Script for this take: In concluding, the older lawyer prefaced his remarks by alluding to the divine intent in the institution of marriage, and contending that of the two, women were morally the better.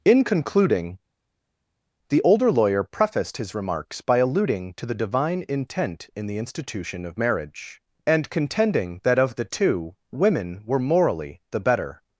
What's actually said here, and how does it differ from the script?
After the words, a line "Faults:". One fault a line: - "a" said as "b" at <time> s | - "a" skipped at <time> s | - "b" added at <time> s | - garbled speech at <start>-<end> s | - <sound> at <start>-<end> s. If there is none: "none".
In concluding, the older lawyer prefaced his remarks by alluding to the divine intent in the institution of marriage, and contending that of the two, women were morally the better.
Faults:
none